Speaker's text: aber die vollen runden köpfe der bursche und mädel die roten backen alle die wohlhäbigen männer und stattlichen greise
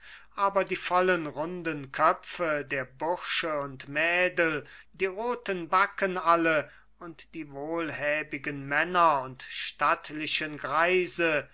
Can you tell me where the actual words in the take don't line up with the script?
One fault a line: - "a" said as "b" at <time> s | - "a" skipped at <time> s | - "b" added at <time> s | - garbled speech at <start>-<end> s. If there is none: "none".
- "und" added at 7.0 s